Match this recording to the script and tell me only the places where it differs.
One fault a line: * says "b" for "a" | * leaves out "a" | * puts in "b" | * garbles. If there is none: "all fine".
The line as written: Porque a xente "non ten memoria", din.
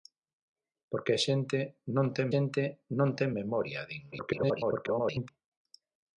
* puts in "xente non ten"
* garbles